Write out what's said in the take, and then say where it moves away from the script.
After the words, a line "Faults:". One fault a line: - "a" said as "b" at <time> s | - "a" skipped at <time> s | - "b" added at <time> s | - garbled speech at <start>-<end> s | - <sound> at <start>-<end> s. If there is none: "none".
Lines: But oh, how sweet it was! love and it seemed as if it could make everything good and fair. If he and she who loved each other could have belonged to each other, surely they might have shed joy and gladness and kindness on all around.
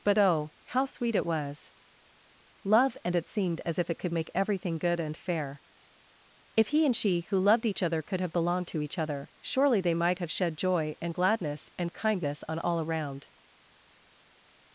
But oh, how sweet it was! love and it seemed as if it could make everything good and fair. If he and she who loved each other could have belonged to each other, surely they might have shed joy and gladness and kindness on all around.
Faults:
none